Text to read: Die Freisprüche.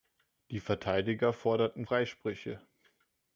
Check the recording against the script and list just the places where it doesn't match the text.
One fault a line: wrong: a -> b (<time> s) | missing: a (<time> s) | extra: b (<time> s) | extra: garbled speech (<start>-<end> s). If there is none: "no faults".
extra: Verteidiger forderten (0.6 s)